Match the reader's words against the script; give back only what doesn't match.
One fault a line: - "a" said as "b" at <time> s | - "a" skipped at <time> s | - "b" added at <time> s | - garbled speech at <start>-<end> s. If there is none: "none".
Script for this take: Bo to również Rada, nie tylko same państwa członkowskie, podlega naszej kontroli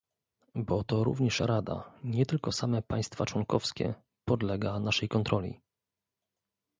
none